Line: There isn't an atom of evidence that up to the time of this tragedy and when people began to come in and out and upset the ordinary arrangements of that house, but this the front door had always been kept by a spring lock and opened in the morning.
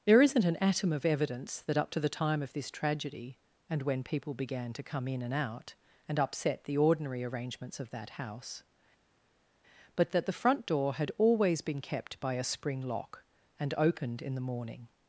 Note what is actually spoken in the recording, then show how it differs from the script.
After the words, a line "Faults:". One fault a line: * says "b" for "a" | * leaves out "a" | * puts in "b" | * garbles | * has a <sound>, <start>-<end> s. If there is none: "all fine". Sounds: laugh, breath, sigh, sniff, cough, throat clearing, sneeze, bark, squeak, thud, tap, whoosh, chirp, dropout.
There isn't an atom of evidence that up to the time of this tragedy and when people began to come in and out and upset the ordinary arrangements of that house, but that the front door had always been kept by a spring lock and opened in the morning.
Faults:
* says "that" for "this"